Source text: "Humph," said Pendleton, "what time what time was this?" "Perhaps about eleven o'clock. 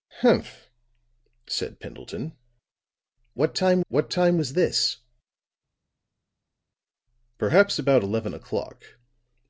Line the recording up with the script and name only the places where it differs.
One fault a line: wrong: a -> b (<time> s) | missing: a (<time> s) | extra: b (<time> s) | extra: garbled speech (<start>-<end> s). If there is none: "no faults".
no faults